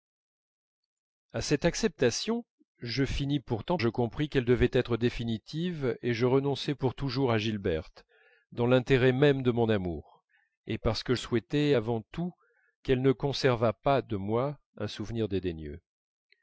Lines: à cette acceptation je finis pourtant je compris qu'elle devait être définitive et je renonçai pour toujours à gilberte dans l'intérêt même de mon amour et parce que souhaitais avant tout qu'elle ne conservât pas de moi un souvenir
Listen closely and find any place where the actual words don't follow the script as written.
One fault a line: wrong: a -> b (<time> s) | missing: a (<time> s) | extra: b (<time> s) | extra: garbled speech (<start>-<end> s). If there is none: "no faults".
no faults